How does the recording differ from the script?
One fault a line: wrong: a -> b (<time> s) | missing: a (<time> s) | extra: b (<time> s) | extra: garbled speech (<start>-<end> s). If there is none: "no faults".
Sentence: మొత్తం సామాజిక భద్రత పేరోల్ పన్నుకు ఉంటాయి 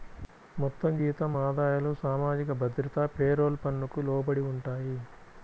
extra: జీతం ఆదాయాలు (1.0 s)
extra: లోబడి (4.1 s)